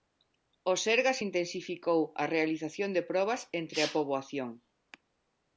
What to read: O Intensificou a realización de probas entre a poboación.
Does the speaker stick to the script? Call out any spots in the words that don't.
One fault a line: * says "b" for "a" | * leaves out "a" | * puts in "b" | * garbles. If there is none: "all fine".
* puts in "Sergas"